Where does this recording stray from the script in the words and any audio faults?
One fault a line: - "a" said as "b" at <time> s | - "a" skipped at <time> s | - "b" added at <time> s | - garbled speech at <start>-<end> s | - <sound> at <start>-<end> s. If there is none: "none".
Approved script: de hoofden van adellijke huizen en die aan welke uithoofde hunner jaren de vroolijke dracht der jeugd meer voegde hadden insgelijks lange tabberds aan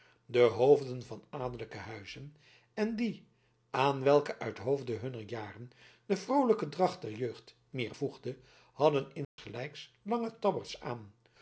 - dropout at 9.2-9.4 s